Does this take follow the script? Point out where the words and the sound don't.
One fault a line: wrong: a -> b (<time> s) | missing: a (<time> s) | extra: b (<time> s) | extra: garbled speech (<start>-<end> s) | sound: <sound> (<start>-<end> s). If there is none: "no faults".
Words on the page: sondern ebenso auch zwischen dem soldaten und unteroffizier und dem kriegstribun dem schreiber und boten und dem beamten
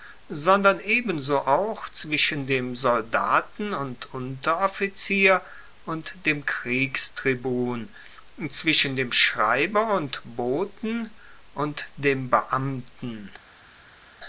extra: zwischen (8.5 s)